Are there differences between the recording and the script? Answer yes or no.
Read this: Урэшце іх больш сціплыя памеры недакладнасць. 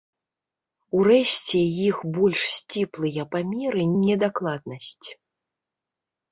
no